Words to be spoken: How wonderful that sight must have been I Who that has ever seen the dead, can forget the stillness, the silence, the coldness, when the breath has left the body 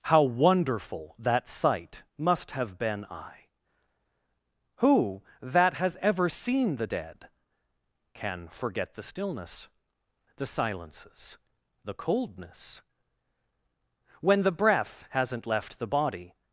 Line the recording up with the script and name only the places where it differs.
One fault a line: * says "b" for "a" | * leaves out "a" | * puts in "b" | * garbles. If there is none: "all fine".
* says "silences" for "silence"
* says "hasn't" for "has"